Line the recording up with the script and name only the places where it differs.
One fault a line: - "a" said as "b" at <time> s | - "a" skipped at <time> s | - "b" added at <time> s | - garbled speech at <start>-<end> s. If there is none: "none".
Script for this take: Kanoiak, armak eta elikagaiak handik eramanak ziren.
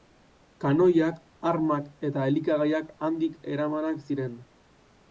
none